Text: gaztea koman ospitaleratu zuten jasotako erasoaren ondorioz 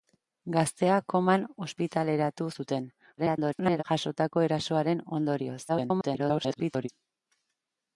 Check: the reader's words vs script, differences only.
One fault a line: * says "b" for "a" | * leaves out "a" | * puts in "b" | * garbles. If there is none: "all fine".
* garbles
* garbles